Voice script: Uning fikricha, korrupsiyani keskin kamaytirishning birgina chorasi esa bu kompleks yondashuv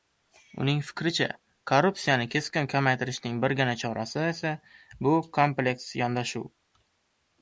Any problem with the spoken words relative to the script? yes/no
no